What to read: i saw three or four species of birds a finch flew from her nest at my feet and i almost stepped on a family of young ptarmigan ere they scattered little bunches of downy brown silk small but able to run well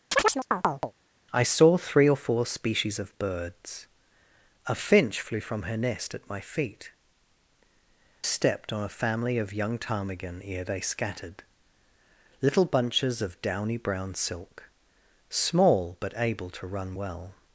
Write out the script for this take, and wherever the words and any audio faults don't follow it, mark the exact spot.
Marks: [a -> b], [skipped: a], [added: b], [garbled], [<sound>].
[chirp] i saw three or four species of birds a finch flew from her nest at my feet [skipped: and i almost] stepped on a family of young ptarmigan ere they scattered little bunches of downy brown silk small but able to run well